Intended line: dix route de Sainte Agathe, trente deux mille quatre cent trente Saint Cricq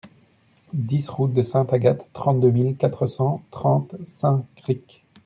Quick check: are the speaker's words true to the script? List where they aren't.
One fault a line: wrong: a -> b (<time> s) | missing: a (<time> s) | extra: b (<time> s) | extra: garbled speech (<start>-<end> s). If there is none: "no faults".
no faults